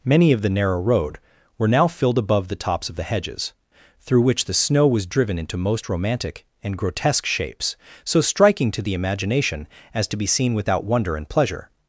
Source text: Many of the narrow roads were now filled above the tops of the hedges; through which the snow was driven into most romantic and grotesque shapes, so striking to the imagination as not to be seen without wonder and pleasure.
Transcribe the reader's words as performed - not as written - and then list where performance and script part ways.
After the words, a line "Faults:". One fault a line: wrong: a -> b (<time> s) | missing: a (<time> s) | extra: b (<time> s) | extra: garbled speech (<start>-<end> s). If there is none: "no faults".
Many of the narrow road were now filled above the tops of the hedges; through which the snow was driven into most romantic and grotesque shapes, so striking to the imagination as to be seen without wonder and pleasure.
Faults:
wrong: roads -> road (0.8 s)
missing: not (10.1 s)